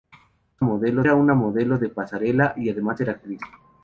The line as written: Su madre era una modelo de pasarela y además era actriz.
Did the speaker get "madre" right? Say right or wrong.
wrong